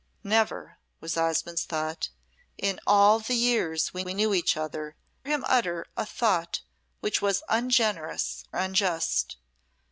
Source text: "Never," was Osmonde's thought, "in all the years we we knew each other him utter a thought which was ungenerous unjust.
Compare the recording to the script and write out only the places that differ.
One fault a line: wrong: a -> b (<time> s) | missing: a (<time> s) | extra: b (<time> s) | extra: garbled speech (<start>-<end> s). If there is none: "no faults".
no faults